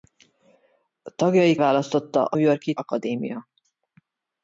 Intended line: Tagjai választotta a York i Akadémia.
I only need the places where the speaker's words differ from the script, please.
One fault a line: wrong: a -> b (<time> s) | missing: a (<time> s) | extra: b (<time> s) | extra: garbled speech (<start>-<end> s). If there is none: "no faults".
no faults